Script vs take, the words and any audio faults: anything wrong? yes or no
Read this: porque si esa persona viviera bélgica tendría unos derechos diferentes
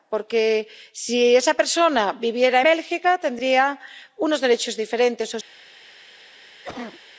yes